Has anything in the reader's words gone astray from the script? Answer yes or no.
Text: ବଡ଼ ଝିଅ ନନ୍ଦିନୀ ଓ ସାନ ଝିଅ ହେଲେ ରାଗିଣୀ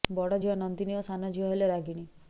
no